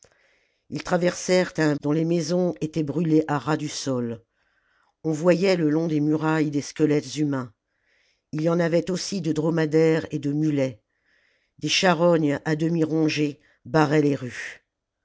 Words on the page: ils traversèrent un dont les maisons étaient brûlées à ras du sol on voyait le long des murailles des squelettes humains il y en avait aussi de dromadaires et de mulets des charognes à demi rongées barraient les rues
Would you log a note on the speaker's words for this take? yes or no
no